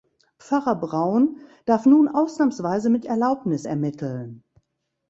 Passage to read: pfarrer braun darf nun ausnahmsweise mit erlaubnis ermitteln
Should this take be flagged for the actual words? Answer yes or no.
no